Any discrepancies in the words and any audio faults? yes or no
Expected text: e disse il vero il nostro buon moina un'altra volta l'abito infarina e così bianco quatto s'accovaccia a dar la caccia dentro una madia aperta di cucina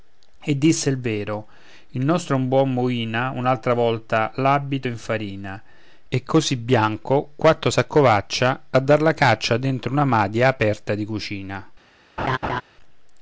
yes